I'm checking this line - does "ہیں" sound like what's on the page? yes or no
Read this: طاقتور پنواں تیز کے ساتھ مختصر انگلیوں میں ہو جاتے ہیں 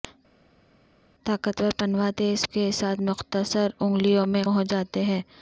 yes